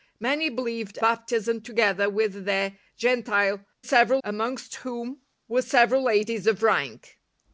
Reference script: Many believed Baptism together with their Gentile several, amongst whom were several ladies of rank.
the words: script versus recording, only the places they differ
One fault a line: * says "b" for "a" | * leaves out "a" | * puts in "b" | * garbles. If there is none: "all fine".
all fine